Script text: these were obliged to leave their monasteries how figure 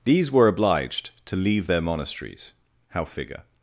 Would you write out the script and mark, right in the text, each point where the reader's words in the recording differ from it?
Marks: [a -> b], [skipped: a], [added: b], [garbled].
these were obliged to leave their monasteries how figure